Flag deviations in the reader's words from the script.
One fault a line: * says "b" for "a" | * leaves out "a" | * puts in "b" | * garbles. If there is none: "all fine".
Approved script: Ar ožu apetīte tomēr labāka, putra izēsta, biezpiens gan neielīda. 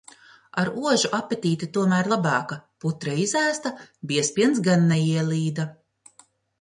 all fine